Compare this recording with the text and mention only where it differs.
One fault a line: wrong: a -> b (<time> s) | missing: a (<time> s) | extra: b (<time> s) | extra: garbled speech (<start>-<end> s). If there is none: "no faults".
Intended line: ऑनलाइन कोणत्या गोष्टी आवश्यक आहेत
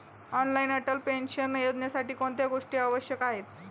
extra: अटल पेन्शन योजनेसाठी (0.7 s)